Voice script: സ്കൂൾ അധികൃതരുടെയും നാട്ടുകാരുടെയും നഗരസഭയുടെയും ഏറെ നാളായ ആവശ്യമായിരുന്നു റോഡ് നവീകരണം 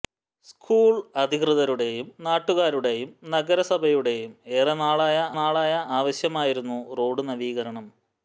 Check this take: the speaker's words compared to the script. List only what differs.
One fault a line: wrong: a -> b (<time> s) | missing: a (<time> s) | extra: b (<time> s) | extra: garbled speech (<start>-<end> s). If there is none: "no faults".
extra: നാളായ (5.3 s)